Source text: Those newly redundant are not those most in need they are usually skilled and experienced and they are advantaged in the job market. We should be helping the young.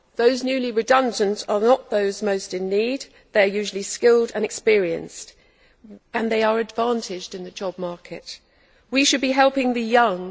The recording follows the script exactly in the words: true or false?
true